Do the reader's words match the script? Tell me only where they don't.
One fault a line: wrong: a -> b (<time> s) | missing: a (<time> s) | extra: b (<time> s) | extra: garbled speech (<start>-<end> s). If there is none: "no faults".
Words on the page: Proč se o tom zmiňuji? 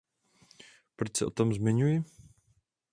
no faults